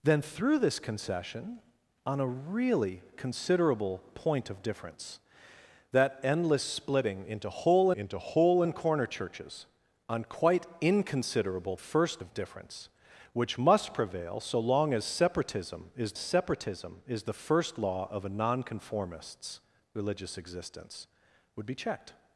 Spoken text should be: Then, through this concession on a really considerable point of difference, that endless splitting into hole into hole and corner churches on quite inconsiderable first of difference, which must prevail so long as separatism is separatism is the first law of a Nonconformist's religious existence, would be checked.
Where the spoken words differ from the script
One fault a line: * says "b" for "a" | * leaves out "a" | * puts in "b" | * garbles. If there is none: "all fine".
all fine